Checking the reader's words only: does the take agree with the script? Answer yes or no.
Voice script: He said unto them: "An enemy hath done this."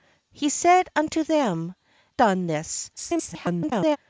no